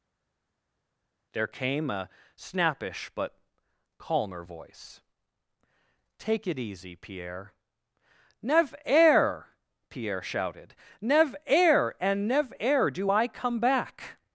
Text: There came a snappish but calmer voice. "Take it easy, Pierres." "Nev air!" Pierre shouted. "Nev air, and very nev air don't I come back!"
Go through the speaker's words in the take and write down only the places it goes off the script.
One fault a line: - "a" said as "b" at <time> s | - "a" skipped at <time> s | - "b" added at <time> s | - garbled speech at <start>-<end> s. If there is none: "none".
- "Pierres" said as "Pierre" at 7.0 s
- "very" skipped at 12.3 s
- "don't" said as "do" at 12.9 s